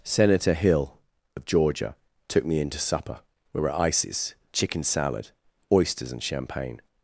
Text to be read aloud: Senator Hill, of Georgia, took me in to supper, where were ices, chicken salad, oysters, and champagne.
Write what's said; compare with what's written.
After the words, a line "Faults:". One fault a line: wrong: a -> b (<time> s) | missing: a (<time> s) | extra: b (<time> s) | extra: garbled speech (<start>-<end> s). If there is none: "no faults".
Senator Hill, of Georgia, took me in to supper, we were at ices, chicken salad, oysters, and champagne.
Faults:
wrong: where -> we (3.5 s)
extra: at (3.7 s)